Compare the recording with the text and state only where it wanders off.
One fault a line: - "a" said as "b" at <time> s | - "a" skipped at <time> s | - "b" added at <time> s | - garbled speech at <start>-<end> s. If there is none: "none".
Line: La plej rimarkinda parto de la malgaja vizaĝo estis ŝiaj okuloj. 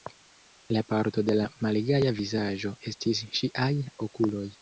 - "plej rimarkinda" skipped at 0.8 s